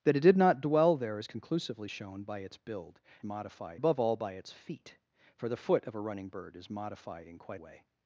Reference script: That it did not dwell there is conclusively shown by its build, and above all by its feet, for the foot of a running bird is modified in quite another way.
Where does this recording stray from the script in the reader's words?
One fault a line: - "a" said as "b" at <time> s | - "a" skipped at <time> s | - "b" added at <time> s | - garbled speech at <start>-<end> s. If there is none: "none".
- "and" said as "modified" at 3.2 s
- "another" skipped at 7.6 s